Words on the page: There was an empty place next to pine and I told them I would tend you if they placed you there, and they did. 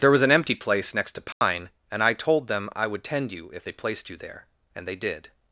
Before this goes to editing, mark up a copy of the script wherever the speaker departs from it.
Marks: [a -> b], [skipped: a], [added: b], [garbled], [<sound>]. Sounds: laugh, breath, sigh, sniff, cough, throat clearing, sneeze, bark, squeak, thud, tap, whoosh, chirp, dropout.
There was an empty place next to pine [dropout] and I told them I would tend you if they placed you there, and they did.